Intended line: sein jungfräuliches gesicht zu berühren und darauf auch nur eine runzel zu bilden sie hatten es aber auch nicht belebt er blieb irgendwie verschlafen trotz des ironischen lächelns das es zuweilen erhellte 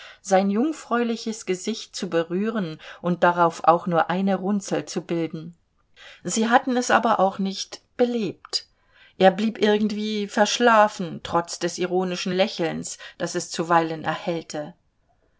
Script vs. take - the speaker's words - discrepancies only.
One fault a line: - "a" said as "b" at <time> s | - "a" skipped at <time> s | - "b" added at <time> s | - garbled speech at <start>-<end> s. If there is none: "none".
none